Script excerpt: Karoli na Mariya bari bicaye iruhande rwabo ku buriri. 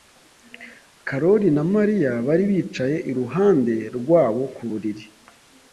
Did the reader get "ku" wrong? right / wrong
right